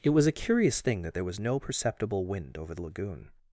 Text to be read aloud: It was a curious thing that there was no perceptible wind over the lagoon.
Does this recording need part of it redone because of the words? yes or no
no